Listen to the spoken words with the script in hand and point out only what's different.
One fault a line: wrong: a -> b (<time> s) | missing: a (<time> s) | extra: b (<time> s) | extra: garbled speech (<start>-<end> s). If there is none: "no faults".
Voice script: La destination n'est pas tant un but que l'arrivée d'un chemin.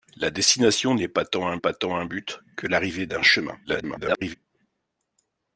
extra: pas tant un (1.6 s)
extra: garbled speech (3.6-4.4 s)